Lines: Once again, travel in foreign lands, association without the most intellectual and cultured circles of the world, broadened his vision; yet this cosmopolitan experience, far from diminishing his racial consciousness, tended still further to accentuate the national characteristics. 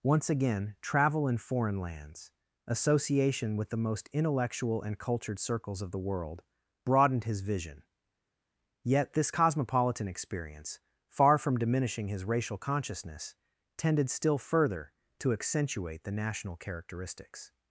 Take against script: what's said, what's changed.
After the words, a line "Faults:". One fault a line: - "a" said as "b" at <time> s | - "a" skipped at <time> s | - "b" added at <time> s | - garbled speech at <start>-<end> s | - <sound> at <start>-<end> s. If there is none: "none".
Once again, travel in foreign lands, association with the most intellectual and cultured circles of the world, broadened his vision; yet this cosmopolitan experience, far from diminishing his racial consciousness, tended still further to accentuate the national characteristics.
Faults:
- "without" said as "with" at 3.5 s